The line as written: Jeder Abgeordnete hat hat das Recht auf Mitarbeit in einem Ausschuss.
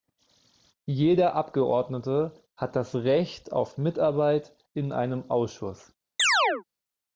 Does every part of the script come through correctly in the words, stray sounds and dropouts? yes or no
no